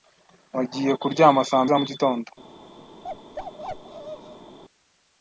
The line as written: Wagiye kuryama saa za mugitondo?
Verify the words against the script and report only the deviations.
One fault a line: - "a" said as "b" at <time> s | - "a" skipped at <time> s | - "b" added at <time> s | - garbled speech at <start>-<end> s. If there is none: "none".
none